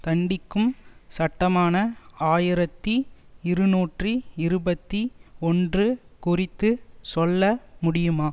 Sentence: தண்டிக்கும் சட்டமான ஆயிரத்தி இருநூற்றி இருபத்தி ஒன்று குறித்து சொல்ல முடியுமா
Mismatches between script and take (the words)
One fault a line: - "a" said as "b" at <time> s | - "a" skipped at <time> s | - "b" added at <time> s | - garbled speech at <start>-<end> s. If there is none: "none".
none